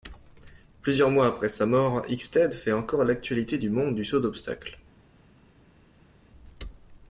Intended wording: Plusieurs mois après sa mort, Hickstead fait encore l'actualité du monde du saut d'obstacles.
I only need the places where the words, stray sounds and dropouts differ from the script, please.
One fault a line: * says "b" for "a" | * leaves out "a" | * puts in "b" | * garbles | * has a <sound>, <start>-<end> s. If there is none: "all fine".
all fine